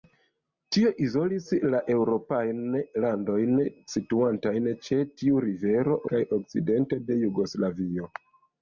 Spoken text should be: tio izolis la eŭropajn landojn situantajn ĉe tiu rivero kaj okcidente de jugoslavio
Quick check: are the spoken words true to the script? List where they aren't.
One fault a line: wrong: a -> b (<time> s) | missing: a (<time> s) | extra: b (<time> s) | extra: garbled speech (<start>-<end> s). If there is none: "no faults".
no faults